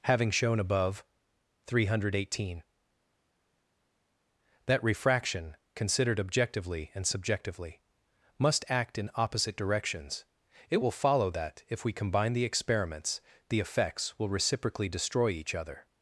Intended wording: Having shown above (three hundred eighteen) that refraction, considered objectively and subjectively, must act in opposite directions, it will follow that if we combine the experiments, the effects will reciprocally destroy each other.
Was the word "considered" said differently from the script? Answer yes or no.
no